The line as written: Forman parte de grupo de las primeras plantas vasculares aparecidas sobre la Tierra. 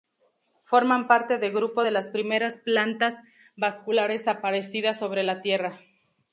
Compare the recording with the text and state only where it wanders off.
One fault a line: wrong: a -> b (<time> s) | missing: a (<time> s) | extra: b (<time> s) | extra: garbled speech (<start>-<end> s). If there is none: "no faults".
no faults